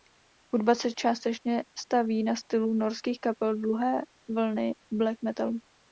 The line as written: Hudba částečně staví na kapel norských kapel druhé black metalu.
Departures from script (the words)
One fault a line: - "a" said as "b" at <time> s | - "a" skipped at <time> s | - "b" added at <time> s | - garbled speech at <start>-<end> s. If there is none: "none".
- "se" added at 0.8 s
- "kapel" said as "stylu" at 2.4 s
- "vlny" added at 4.3 s